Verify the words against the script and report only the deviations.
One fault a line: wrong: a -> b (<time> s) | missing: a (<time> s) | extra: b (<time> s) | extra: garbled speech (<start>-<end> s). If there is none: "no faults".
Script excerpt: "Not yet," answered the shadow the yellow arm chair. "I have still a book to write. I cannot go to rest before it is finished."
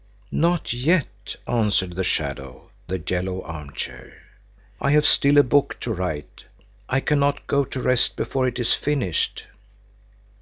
no faults